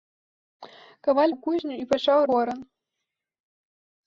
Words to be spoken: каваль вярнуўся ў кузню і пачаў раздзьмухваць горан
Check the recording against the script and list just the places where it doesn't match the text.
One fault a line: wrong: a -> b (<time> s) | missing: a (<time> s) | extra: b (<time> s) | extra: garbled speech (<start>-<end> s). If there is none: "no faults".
missing: вярнуўся (1.3 s)
missing: раздзьмухваць (2.2 s)